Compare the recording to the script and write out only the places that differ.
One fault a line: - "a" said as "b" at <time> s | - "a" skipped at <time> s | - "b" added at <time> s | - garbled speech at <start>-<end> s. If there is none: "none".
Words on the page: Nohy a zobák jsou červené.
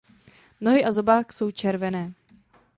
none